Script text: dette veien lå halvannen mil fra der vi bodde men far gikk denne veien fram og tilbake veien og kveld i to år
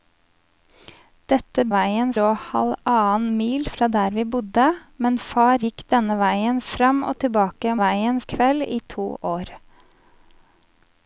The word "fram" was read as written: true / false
true